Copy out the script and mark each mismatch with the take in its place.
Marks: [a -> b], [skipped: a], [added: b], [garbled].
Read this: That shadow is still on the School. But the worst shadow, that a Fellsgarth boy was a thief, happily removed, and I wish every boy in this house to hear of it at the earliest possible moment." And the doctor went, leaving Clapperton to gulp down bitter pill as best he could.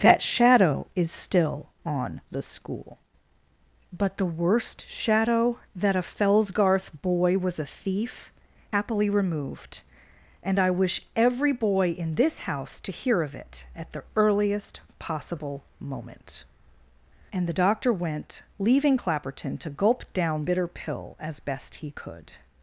That shadow is still on the School. But the worst shadow, that a Fellsgarth boy was a thief, happily removed, and I wish every boy in this house to hear of it at the earliest possible moment." And the doctor went, leaving Clapperton to gulp down bitter pill as best he could.